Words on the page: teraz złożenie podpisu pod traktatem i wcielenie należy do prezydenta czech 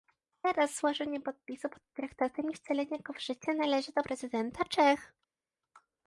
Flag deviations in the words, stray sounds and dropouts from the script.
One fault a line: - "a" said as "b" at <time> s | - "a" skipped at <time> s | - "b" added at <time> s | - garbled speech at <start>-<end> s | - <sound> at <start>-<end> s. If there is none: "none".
- "go w życie" added at 3.0 s